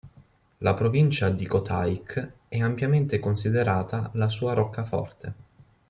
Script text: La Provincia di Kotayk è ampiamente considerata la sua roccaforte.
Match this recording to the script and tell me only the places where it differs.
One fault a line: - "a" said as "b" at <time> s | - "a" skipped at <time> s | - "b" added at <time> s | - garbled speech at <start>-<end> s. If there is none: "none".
none